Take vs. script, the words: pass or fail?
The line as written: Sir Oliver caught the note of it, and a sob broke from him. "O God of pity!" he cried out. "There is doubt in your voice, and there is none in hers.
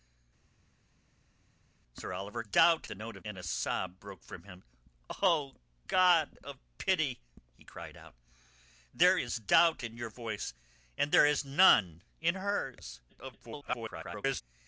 fail